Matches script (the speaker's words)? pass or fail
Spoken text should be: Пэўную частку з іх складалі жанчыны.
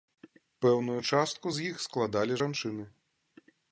pass